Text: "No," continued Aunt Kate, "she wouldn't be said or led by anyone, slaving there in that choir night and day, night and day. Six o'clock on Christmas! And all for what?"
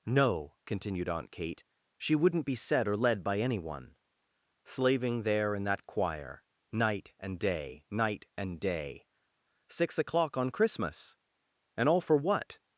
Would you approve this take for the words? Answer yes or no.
yes